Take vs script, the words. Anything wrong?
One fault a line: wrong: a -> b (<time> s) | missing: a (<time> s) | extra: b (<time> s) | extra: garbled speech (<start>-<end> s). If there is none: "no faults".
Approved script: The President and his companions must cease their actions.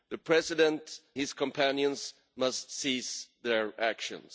missing: and (1.0 s)